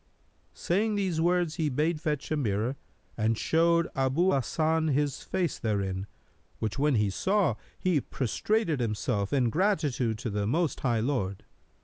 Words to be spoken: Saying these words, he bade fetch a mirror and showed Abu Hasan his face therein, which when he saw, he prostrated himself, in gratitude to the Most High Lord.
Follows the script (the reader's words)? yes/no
yes